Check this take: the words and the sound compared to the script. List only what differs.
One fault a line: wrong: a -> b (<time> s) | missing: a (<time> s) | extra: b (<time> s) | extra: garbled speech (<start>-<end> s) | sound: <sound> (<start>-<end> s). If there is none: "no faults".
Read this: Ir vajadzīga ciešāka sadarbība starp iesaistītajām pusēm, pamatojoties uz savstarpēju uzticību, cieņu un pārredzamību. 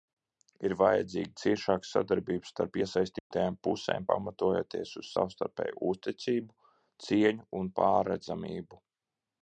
sound: dropout (3.2-3.3 s)